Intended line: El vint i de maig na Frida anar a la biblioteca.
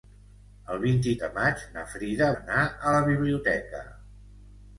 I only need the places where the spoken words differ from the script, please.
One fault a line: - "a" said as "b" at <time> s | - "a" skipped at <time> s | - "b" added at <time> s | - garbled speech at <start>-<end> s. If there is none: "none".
none